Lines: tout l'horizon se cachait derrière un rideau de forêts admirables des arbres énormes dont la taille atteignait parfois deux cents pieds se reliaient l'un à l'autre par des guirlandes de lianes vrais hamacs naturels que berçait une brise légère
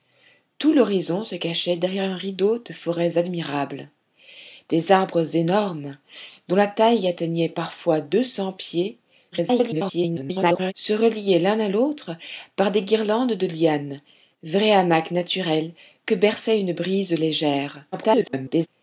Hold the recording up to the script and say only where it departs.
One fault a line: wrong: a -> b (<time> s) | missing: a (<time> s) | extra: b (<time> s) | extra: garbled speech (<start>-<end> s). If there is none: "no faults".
extra: garbled speech (9.3-10.7 s)
extra: garbled speech (17.9-18.7 s)